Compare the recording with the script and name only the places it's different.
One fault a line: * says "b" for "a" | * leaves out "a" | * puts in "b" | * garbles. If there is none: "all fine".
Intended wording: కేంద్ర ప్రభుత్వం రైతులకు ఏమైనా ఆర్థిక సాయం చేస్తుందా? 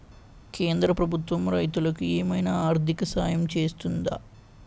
all fine